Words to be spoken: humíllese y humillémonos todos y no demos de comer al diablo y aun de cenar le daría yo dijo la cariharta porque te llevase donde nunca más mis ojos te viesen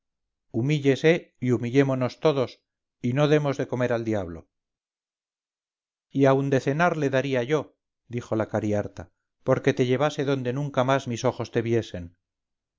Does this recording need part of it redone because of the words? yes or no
no